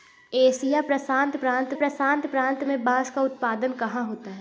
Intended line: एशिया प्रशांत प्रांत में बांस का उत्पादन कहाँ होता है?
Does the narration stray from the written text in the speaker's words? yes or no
yes